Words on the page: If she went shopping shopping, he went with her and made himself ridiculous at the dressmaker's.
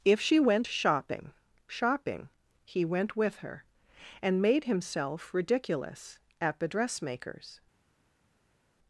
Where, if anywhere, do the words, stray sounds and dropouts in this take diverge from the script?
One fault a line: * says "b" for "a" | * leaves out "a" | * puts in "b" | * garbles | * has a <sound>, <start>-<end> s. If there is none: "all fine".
all fine